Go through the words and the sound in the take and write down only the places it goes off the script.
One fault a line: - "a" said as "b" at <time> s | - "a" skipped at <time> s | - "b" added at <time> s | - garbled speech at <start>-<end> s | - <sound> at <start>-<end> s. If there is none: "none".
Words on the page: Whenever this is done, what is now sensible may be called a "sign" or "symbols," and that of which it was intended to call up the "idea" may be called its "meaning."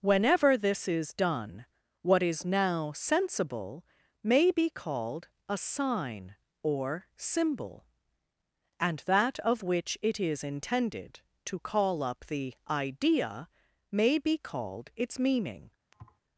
- "symbols" said as "symbol" at 7.2 s
- "was" said as "is" at 10.2 s
- thud at 15.9-16.2 s